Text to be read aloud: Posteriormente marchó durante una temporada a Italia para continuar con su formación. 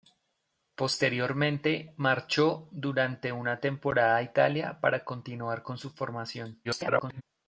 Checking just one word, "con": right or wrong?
right